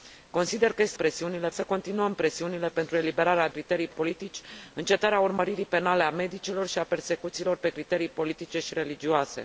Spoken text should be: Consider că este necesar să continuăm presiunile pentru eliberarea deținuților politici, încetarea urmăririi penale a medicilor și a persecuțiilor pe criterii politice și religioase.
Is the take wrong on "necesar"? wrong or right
wrong